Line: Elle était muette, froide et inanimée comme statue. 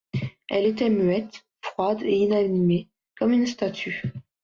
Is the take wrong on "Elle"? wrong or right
right